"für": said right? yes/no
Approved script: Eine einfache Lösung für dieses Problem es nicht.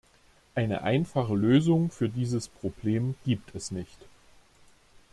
yes